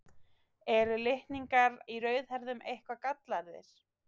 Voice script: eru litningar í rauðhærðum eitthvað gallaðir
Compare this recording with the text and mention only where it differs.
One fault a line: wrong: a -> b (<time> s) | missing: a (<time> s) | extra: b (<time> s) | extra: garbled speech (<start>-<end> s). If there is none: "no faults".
no faults